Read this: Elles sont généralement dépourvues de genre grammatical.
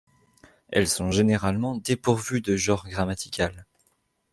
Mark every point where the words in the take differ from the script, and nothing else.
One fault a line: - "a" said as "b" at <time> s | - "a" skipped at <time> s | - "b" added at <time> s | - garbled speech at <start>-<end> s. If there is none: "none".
none